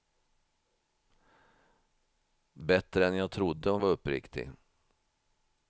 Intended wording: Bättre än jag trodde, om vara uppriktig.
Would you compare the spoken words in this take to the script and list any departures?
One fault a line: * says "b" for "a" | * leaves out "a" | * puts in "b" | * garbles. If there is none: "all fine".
all fine